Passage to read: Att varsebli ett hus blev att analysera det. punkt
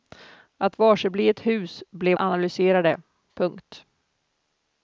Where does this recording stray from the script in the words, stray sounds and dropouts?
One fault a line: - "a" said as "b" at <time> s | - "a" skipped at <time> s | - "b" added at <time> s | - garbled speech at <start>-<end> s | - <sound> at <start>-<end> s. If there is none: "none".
- "att" skipped at 2.2 s